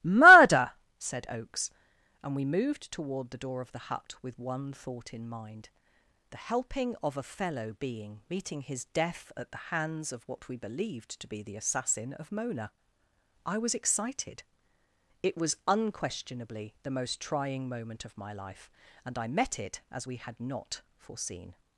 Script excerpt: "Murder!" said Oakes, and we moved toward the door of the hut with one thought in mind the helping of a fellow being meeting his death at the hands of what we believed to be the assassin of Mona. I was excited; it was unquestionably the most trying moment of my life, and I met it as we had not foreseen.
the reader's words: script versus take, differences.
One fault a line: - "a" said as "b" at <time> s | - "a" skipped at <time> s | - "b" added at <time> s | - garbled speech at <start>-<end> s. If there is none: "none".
none